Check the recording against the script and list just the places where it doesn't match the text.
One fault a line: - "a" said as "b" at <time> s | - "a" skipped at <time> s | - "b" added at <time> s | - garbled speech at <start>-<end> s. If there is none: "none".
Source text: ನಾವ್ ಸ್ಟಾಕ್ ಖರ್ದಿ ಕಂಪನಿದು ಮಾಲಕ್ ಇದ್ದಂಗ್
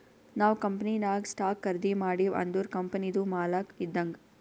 - "ಕಂಪನಿನಾಗ್" added at 0.6 s
- "ಮಾಡಿವ್ ಅಂದುರ್" added at 2.0 s